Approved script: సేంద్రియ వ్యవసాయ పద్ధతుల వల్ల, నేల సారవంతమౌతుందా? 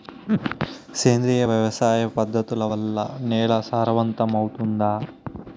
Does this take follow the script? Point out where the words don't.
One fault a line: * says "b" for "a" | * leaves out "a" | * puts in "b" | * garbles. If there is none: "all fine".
all fine